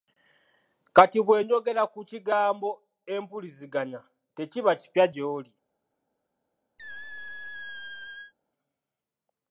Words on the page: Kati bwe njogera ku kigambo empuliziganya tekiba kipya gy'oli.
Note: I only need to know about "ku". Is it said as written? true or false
true